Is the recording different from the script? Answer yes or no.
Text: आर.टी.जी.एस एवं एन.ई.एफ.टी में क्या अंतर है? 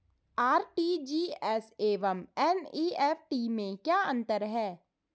no